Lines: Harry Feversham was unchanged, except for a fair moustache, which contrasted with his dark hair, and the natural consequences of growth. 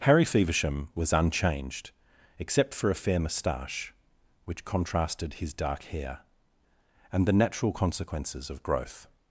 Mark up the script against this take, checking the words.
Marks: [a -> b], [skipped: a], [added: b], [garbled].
Harry Feversham was unchanged, except for a fair moustache, which contrasted [skipped: with] his dark hair, and the natural consequences of growth.